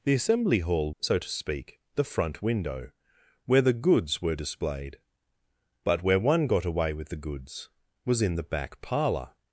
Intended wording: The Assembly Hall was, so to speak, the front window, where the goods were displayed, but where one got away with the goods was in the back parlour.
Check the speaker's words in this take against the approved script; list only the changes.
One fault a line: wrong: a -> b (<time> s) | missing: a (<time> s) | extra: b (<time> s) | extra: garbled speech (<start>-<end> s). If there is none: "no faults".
missing: was (0.9 s)